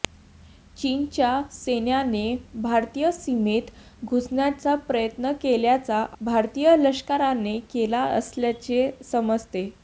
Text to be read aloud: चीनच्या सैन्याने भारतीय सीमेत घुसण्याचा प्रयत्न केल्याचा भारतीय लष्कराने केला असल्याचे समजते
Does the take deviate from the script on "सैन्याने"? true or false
false